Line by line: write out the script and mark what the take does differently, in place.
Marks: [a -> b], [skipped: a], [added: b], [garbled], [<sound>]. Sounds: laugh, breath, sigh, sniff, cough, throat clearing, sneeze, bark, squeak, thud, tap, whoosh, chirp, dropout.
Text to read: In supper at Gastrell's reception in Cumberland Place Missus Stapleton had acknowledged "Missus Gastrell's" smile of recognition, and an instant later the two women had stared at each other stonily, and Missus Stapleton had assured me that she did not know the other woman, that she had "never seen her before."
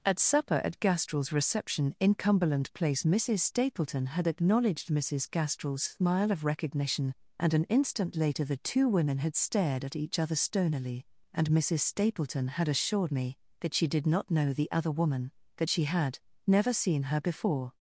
[In -> At] supper at Gastrell's reception in Cumberland Place Missus Stapleton had acknowledged "Missus Gastrell's" smile of recognition, and an instant later the two women had stared at each other stonily, and Missus Stapleton had assured me that she did not know the other woman, that she had "never seen her before."